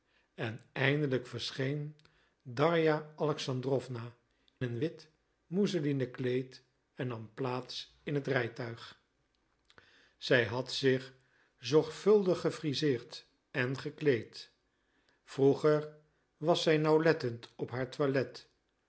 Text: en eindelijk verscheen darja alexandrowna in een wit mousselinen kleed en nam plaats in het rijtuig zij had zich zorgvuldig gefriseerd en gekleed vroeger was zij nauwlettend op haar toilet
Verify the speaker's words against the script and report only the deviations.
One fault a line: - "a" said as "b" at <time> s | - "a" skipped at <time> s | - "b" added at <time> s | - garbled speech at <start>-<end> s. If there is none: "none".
- "in" skipped at 4.1 s